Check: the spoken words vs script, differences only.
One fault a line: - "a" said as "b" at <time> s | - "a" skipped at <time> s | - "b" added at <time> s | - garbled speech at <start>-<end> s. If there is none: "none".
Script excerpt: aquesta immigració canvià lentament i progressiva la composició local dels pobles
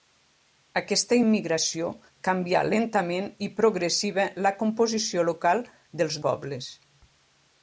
none